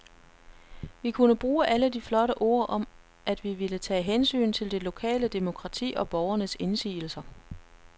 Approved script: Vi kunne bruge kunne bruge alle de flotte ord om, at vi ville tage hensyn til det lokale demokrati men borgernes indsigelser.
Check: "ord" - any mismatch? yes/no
no